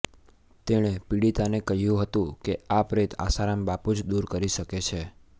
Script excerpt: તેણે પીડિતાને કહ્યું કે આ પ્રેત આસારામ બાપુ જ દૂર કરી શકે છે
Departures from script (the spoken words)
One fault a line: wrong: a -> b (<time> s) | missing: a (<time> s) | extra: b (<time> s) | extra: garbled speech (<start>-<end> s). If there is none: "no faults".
extra: હતું (2.0 s)